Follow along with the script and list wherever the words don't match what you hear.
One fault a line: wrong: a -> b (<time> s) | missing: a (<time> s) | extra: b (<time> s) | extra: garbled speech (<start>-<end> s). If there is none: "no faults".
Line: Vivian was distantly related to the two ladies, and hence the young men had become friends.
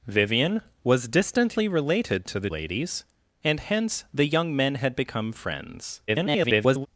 missing: two (2.5 s)
extra: garbled speech (6.1-6.9 s)